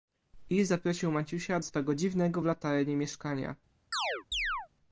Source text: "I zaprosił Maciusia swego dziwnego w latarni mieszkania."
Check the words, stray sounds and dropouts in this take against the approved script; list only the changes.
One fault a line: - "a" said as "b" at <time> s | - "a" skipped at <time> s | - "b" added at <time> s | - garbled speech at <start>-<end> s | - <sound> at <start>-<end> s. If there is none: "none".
- chirp at 3.9-4.7 s